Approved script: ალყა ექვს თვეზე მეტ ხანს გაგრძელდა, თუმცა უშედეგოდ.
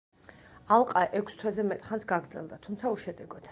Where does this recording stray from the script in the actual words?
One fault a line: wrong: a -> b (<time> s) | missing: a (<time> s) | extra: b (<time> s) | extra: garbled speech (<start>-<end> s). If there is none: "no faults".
no faults